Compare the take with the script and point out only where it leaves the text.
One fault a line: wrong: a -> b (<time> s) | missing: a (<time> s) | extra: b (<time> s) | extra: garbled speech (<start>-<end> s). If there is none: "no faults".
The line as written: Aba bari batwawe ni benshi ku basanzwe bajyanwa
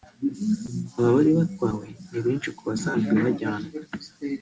no faults